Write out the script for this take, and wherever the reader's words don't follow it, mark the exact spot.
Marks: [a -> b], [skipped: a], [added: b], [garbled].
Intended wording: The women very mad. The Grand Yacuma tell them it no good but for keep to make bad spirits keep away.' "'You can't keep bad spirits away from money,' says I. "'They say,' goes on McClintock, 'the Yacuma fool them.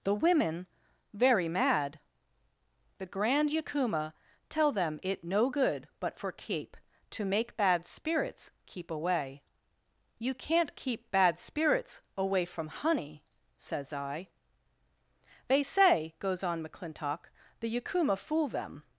The women very mad. The Grand Yacuma tell them it no good but for keep to make bad spirits keep away.' "'You can't keep bad spirits away from [money,' -> honey] says I. "'They say,' goes on McClintock, 'the Yacuma fool them.